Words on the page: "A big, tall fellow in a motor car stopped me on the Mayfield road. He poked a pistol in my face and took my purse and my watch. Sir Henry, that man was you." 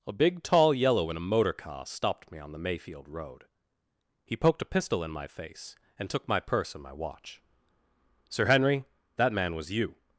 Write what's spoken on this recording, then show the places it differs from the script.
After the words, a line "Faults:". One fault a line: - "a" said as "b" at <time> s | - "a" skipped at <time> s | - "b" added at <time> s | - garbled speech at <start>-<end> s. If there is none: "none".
"A big, tall yellow in a motor car stopped me on the Mayfield road. He poked a pistol in my face and took my purse and my watch. Sir Henry, that man was you."
Faults:
- "fellow" said as "yellow" at 0.7 s